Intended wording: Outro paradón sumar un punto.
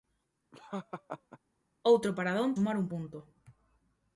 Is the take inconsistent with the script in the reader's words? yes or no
no